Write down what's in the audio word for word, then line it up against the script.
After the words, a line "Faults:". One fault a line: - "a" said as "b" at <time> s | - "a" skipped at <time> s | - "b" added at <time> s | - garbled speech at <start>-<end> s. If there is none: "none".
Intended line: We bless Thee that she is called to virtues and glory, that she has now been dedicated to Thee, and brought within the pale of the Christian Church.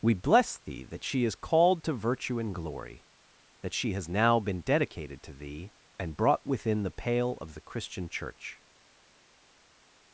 We bless Thee that she is called to virtue and glory, that she has now been dedicated to Thee, and brought within the pale of the Christian Church.
Faults:
- "virtues" said as "virtue" at 1.9 s